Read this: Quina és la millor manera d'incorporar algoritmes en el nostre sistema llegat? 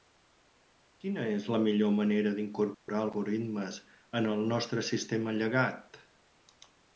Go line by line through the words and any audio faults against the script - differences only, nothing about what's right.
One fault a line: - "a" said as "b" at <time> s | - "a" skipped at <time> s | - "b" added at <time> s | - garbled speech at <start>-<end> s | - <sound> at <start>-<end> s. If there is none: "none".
- dropout at 2.7-2.9 s